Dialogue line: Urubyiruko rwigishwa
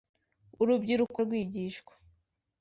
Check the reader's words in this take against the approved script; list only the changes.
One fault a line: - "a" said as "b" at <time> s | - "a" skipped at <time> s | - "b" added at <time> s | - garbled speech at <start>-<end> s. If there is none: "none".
none